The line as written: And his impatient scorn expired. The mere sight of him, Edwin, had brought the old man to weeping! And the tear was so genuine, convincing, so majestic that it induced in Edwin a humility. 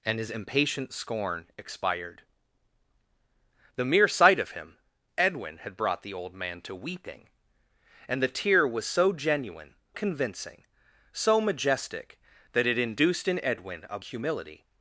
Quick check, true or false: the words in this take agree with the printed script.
true